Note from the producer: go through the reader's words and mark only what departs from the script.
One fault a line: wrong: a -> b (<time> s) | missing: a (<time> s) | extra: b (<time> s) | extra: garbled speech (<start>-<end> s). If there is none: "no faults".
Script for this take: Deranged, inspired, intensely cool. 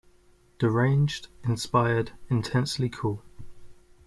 no faults